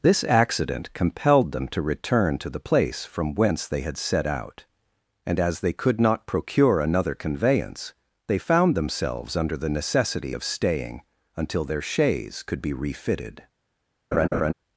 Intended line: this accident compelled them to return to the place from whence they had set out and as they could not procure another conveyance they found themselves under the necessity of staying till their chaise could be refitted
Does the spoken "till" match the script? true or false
false